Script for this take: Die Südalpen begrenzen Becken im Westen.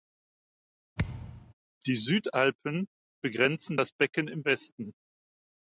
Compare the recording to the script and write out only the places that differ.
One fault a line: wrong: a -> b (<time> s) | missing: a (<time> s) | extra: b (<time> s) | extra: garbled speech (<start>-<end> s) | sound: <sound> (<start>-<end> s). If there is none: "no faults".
sound: thud (1.0-1.5 s)
extra: das (3.8 s)